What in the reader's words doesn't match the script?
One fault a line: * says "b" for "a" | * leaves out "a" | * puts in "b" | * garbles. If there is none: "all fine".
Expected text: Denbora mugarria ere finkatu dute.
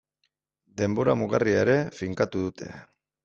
all fine